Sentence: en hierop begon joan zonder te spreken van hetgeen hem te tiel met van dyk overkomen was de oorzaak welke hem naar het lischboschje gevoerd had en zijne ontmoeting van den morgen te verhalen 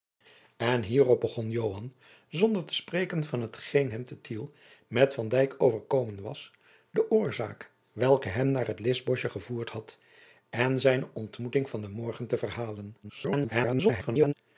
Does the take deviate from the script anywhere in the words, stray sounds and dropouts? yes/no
yes